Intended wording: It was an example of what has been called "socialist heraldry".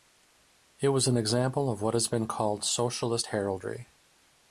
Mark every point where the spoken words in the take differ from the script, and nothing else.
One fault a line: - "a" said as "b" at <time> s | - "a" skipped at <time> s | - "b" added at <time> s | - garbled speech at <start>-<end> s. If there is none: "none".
none